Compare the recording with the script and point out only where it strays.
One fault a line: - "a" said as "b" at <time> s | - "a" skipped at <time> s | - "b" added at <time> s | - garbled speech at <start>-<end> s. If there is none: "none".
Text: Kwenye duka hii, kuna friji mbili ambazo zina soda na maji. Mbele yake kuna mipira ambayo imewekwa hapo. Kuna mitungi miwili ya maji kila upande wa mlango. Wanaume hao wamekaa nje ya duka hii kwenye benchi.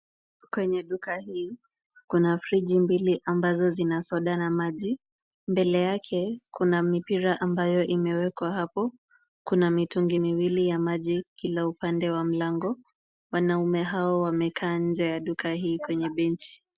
none